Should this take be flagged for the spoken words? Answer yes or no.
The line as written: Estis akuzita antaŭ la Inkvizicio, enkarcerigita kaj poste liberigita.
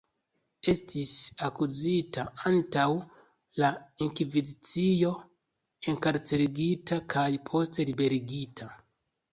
no